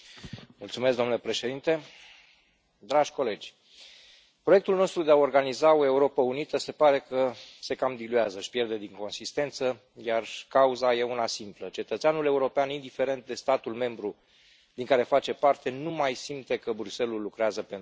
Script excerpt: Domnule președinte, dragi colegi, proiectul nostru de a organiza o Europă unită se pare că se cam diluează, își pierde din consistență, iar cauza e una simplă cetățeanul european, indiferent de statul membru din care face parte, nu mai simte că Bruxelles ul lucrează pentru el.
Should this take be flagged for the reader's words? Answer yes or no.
no